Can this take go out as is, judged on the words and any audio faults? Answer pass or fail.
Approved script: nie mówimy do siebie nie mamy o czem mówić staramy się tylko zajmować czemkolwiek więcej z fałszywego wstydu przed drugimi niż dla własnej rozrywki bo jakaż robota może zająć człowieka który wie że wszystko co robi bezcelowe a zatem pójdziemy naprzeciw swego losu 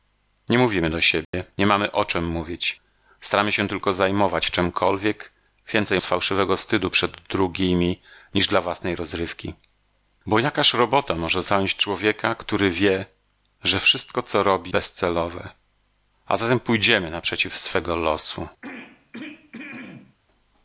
fail